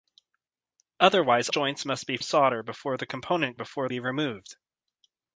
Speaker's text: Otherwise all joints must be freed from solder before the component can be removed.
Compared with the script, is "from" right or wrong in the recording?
wrong